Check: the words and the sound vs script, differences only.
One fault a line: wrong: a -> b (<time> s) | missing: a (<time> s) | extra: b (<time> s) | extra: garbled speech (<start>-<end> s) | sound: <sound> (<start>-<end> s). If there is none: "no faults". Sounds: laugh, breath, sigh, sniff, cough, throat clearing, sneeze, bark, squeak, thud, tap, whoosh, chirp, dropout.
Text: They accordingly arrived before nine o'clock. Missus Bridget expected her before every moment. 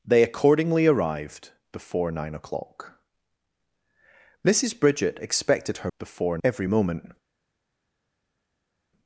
no faults